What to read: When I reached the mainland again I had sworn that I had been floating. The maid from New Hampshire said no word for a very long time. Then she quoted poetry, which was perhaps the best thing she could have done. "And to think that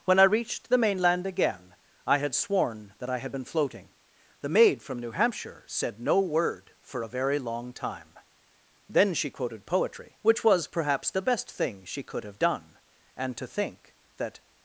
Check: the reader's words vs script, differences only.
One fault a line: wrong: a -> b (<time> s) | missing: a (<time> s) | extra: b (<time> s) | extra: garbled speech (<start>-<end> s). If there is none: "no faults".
no faults